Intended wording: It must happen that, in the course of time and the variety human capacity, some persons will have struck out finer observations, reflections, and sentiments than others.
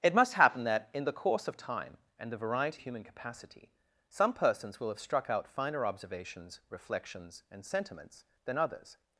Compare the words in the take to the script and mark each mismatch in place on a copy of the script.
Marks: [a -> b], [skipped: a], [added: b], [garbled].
It must happen that, in the course of time and the variety human capacity, some persons will have struck out finer observations, reflections, and sentiments than others.